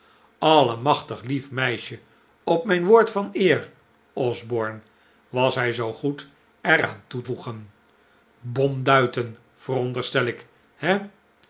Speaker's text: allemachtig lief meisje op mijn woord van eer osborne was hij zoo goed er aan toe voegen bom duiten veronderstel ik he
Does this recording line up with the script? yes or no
yes